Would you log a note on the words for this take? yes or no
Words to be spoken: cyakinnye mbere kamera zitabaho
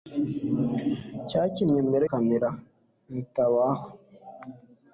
no